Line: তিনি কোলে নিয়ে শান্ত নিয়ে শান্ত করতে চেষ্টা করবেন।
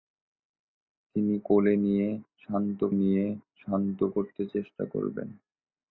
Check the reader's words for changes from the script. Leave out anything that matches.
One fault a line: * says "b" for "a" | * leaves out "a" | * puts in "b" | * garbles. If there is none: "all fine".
all fine